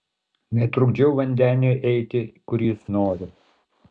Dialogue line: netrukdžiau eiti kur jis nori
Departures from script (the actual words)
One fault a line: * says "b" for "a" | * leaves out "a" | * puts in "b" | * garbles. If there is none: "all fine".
* puts in "vandeniui"